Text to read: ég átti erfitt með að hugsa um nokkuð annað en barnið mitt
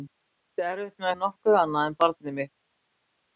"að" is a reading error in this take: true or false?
true